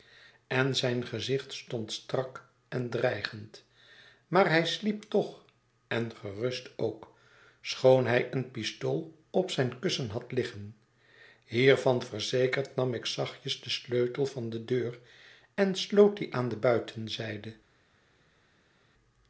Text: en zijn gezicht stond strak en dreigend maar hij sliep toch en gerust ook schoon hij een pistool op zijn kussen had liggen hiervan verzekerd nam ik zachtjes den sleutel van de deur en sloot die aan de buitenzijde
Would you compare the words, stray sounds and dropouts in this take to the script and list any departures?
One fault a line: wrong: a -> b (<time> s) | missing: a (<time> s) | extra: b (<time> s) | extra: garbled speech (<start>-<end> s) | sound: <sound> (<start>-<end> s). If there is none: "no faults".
no faults